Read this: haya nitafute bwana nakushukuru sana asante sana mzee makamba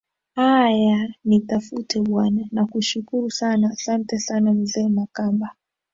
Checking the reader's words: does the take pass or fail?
pass